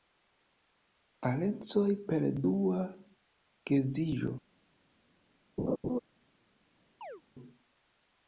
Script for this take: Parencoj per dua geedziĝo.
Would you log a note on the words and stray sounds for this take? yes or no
yes